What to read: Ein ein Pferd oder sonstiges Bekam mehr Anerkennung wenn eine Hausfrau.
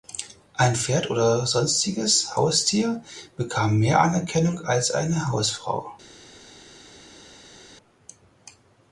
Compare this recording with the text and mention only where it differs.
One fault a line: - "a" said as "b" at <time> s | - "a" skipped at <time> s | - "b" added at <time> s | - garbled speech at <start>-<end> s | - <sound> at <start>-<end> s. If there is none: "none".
- "ein" skipped at 0.8 s
- "Haustier" added at 2.3 s
- "wenn" said as "als" at 4.6 s